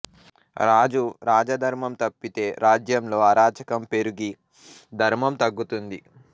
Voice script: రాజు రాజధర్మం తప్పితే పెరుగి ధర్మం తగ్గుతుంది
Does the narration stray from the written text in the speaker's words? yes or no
yes